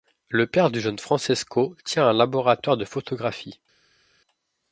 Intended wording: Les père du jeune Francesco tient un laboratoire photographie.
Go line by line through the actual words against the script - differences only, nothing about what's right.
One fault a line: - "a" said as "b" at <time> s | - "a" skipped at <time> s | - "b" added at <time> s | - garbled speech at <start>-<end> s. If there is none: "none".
- "Les" said as "Le" at 0.3 s
- "de" added at 2.8 s